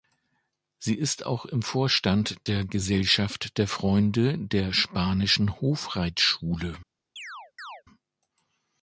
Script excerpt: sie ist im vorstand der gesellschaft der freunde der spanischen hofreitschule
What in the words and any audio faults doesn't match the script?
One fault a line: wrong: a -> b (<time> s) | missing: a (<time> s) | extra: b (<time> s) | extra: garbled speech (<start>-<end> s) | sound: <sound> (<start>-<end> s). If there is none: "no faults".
extra: auch (1.3 s)
sound: chirp (7.2-7.8 s)